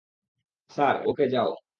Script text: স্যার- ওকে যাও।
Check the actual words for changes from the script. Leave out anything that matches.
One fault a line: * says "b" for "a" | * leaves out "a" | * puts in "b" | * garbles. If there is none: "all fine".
all fine